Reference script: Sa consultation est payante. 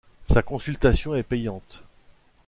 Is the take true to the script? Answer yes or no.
yes